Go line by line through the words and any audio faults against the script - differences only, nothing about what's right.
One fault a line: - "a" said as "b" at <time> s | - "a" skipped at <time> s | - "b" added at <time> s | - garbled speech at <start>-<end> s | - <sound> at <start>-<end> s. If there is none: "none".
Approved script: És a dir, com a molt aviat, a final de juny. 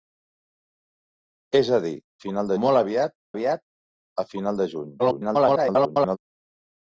- "com" said as "final" at 2.2 s
- "aviat" added at 3.3 s
- garbled speech at 5.0-6.2 s